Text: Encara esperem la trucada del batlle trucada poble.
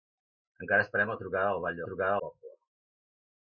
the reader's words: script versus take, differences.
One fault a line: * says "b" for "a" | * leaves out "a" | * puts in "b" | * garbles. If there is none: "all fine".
all fine